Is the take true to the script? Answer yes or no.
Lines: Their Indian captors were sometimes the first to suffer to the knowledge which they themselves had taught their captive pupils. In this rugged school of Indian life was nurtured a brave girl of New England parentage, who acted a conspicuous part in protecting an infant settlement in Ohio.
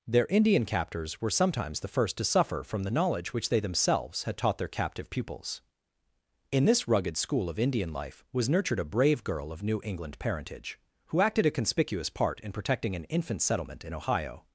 no